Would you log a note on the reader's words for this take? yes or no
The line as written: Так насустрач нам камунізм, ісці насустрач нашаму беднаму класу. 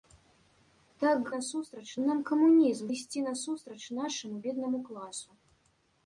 no